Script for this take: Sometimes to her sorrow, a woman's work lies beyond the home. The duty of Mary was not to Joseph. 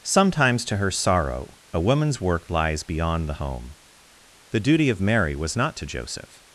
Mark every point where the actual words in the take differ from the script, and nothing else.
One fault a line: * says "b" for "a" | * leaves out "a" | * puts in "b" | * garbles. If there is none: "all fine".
all fine